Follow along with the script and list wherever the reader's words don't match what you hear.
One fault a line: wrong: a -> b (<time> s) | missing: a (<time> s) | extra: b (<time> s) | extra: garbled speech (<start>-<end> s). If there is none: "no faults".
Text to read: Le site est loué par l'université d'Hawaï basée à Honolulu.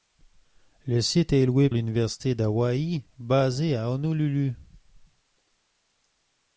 missing: par (1.7 s)